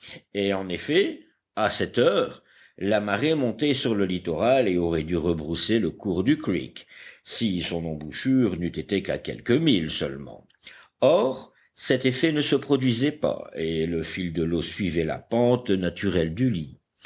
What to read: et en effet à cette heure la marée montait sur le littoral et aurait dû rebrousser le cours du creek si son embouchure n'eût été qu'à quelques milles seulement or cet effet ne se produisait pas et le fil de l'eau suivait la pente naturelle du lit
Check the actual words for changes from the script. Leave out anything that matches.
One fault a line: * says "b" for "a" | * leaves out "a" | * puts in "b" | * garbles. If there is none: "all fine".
all fine